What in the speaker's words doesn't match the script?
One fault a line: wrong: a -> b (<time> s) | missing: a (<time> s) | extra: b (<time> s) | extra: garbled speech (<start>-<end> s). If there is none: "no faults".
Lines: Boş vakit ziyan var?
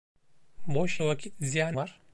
no faults